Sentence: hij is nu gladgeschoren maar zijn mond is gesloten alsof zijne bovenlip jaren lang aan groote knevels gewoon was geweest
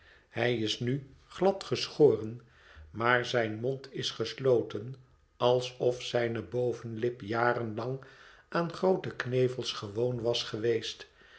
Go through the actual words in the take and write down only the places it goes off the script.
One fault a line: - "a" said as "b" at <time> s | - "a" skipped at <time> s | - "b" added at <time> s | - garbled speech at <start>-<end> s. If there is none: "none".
none